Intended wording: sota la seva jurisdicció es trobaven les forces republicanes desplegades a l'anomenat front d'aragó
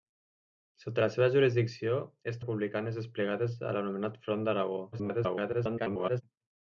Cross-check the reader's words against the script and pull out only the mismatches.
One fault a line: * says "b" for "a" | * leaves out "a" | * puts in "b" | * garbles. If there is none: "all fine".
* leaves out "trobaven les forces"
* garbles